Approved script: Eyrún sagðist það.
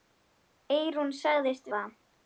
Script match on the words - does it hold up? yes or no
yes